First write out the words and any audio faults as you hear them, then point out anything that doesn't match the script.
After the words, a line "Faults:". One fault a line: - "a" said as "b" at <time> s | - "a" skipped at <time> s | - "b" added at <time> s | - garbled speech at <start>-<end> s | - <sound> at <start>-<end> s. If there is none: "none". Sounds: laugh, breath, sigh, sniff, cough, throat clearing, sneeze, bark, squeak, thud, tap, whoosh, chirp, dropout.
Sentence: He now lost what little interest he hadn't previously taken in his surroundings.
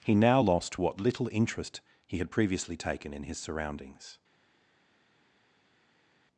He now lost what little interest he had previously taken in his surroundings.
Faults:
- "hadn't" said as "had" at 2.2 s